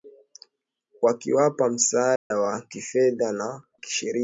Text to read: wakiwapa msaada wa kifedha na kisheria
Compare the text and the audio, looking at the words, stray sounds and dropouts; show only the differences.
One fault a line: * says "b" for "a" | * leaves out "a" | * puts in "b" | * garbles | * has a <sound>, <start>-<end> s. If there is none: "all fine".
* has a dropout, 2.2-2.3 s